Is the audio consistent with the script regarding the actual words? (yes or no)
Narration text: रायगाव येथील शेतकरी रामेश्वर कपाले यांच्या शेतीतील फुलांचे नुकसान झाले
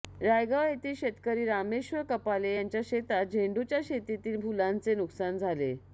no